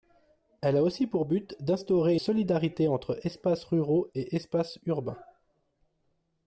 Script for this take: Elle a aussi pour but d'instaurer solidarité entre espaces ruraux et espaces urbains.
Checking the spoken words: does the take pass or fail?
pass